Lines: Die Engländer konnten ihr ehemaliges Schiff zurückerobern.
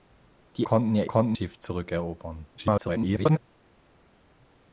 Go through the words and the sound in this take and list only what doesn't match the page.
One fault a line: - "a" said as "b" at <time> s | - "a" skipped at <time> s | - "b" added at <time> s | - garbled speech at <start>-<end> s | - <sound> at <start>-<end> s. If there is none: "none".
- "Engländer" skipped at 0.7 s
- "ehemaliges" said as "konnten" at 1.0 s
- garbled speech at 2.6-3.4 s